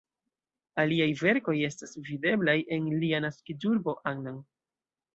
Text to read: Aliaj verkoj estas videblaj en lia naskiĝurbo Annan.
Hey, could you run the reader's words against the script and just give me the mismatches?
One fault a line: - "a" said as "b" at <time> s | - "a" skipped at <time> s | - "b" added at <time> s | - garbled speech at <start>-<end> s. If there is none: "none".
none